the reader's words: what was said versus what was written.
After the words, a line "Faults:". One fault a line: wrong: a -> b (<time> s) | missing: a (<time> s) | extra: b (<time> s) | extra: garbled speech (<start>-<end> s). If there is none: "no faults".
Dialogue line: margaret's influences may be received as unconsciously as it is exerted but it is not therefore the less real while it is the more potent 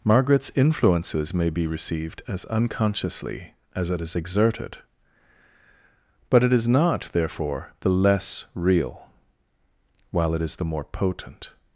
margaret's influences may be received as unconsciously as it is exerted but it is not therefore the less real while it is the more potent
Faults:
no faults